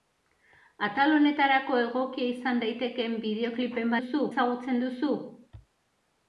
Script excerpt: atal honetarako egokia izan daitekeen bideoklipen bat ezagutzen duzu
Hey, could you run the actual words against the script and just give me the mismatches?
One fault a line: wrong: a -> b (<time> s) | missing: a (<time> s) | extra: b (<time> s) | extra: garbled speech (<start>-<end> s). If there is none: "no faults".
wrong: bat -> duzu (4.0 s)